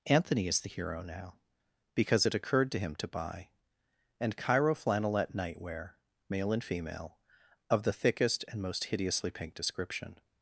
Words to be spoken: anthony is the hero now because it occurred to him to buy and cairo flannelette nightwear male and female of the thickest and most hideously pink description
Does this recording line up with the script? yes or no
yes